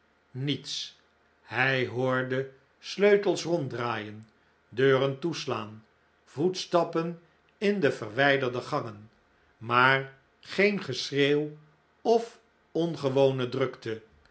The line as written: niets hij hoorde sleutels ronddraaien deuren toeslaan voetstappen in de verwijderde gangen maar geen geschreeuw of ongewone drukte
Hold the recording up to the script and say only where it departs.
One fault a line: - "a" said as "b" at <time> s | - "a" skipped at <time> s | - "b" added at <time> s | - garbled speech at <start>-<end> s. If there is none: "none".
none